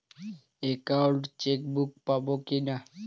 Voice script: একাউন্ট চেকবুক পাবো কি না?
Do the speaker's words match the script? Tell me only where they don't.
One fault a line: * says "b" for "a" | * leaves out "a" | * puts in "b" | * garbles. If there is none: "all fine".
all fine